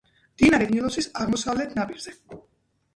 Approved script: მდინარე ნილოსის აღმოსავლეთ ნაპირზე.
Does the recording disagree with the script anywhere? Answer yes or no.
no